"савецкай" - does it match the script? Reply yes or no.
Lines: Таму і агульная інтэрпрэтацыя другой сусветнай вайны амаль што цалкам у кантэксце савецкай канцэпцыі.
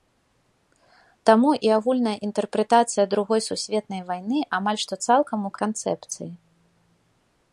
no